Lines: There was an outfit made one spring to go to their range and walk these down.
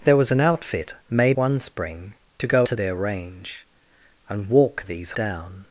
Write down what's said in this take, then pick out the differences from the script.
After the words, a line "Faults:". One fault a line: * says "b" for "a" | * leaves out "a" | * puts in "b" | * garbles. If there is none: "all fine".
There was an outfit made one spring to go to their range and walk these down.
Faults:
all fine